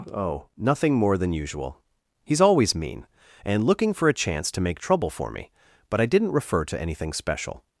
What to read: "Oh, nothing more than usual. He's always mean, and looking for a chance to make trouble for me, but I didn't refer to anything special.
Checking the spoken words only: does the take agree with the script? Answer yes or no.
yes